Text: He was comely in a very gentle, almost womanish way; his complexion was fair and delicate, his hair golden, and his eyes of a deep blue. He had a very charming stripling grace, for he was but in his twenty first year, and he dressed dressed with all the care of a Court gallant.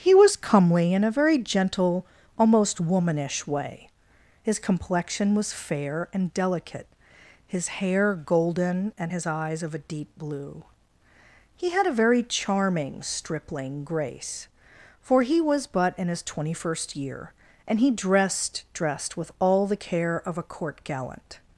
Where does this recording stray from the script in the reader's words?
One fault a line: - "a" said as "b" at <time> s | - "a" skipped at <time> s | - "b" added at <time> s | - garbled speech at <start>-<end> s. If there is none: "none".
none